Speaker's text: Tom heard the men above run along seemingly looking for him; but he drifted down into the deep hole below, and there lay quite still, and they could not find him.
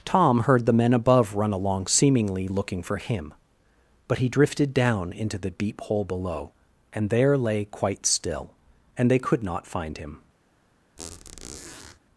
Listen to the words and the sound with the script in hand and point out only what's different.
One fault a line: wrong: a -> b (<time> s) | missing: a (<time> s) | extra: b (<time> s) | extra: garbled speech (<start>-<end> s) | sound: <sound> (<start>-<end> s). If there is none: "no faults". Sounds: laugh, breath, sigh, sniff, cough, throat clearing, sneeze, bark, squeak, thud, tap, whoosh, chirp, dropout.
sound: squeak (11.0-12.0 s)